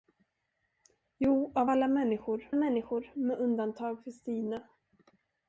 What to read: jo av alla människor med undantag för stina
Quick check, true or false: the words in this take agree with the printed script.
false